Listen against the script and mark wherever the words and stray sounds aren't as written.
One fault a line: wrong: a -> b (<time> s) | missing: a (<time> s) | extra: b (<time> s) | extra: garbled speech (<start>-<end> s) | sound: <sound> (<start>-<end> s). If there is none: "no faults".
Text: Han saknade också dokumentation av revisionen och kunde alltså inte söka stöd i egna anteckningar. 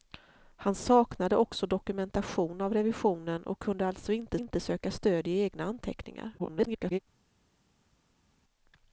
extra: inte (4.3 s)
extra: garbled speech (6.4-7.0 s)